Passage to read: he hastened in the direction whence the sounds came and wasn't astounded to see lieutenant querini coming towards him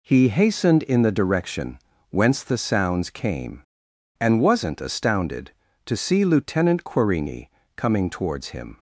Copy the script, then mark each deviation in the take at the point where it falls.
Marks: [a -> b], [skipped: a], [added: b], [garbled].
he hastened in the direction whence the sounds came and wasn't astounded to see lieutenant querini coming towards him